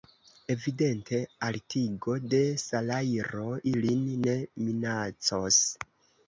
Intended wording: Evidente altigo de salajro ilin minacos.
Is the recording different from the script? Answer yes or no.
yes